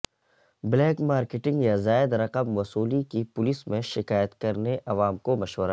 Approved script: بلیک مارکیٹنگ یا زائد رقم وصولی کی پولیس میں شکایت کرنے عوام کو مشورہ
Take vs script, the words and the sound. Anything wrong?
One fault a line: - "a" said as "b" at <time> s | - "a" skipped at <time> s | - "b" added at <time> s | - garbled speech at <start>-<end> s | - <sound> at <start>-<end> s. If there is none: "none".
none